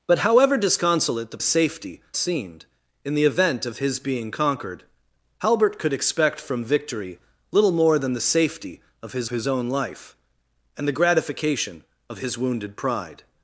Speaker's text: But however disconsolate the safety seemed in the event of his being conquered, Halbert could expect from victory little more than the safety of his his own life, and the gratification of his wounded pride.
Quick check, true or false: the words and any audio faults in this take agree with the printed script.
true